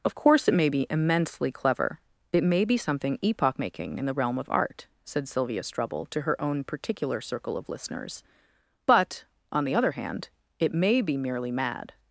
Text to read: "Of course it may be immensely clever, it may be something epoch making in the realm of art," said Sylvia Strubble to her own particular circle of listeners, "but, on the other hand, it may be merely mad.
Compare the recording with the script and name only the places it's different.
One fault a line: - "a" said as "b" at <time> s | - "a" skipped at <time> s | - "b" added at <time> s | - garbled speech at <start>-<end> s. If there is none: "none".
none